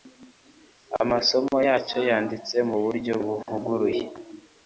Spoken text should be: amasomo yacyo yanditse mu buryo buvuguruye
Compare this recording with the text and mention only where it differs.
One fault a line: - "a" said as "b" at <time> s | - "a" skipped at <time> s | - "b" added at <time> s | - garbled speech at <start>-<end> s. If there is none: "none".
none